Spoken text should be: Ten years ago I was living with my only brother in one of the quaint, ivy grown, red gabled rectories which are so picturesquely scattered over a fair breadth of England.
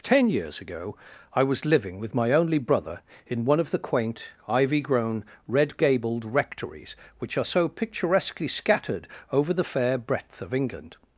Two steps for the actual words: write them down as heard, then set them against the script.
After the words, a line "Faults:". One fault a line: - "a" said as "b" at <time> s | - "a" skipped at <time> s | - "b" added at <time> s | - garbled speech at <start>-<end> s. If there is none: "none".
Ten years ago I was living with my only brother in one of the quaint, ivy grown, red gabled rectories which are so picturesquely scattered over the fair breadth of England.
Faults:
- "a" said as "the" at 9.5 s